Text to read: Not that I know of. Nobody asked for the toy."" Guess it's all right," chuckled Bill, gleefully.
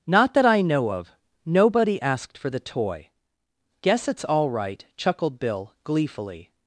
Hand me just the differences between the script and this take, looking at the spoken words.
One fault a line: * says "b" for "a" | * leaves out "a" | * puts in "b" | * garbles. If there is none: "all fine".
all fine